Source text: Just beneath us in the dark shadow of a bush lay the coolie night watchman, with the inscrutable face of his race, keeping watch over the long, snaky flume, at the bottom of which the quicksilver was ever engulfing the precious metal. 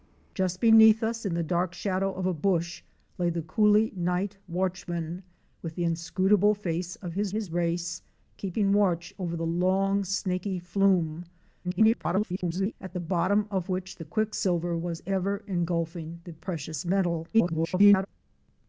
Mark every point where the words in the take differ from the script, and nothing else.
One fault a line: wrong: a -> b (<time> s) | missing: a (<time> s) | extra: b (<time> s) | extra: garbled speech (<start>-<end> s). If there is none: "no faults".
extra: his (7.3 s)
extra: garbled speech (11.6-12.7 s)
extra: garbled speech (17.3-18.1 s)